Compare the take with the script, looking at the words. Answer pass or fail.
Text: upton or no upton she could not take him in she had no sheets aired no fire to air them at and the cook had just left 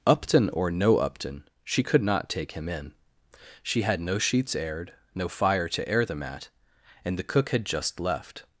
pass